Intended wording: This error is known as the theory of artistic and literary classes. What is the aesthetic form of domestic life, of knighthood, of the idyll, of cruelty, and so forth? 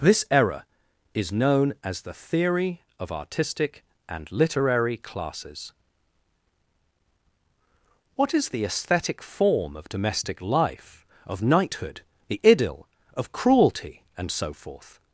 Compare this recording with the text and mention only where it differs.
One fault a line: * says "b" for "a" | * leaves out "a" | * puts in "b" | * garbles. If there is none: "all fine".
* leaves out "of"